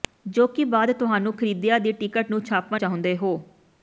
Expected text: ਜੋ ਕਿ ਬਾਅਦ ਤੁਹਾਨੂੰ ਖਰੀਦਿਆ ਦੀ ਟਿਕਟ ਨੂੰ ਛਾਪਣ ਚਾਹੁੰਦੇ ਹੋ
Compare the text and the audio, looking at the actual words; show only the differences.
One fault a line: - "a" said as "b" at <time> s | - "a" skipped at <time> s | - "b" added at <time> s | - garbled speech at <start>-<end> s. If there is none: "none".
none